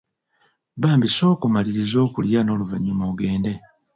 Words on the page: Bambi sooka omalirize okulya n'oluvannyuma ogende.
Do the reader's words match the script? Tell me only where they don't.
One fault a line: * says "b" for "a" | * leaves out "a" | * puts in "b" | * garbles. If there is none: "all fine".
all fine